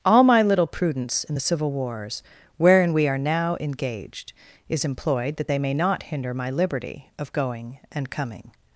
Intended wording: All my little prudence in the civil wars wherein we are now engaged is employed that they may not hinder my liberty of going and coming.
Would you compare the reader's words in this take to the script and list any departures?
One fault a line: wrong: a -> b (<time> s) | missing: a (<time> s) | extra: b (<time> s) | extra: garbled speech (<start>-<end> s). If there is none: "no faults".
no faults